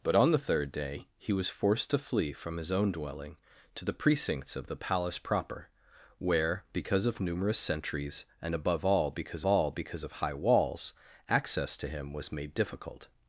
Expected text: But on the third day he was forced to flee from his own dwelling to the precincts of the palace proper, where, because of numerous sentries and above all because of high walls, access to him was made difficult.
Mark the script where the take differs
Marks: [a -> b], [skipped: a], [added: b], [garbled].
But on the third day he was forced to flee from his own dwelling to the precincts of the palace proper, where, because of numerous sentries and above all because [added: all because] of high walls, access to him was made difficult.